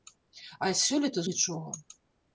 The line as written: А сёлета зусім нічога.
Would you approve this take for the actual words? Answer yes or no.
no